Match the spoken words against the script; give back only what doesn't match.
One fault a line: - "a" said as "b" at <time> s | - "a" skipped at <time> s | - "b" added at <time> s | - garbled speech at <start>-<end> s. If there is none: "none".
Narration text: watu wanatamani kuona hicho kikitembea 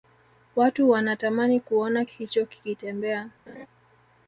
none